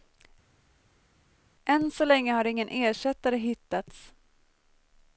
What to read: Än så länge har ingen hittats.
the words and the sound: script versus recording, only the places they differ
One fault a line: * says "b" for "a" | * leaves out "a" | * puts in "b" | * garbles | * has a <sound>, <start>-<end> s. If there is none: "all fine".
* puts in "ersättare"